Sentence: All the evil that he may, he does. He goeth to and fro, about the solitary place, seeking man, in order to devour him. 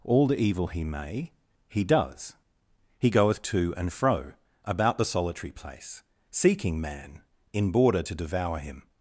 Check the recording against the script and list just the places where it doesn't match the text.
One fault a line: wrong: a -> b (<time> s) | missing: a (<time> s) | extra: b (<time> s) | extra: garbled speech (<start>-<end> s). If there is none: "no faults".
missing: that (0.7 s)
wrong: order -> border (7.7 s)